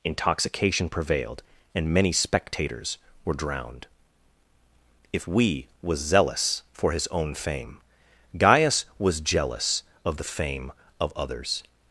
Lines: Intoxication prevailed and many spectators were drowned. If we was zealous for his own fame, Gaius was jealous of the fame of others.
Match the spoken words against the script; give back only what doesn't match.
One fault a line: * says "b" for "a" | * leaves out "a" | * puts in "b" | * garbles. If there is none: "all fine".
all fine